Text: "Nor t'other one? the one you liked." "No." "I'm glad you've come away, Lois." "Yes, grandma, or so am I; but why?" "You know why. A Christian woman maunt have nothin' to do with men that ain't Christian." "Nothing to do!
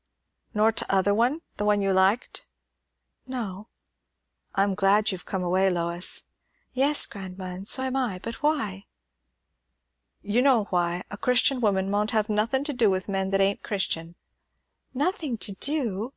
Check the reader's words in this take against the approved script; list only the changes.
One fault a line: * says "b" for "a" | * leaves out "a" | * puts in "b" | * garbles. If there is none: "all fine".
* says "and" for "or"